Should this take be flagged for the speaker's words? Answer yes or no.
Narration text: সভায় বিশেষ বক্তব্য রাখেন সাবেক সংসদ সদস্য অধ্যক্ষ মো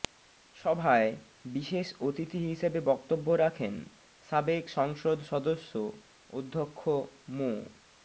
yes